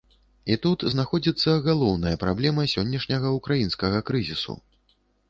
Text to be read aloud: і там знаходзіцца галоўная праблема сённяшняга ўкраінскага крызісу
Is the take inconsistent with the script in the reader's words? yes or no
yes